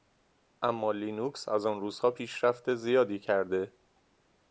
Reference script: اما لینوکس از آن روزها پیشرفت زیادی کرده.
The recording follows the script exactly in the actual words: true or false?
true